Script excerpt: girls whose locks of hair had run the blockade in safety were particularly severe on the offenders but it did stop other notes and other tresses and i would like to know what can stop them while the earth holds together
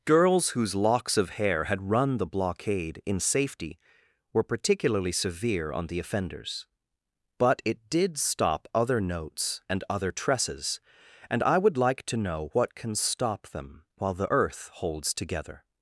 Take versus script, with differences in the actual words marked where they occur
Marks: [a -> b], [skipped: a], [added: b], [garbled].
girls whose locks of hair had run the blockade in safety were particularly severe on the offenders but it did stop other notes and other tresses and i would like to know what can stop them while the earth holds together